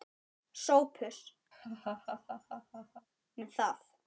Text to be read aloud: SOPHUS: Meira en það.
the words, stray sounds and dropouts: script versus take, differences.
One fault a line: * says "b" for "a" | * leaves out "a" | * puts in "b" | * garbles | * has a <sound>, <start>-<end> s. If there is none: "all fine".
* leaves out "Meira"
* has a laugh, 1.5-3.1 s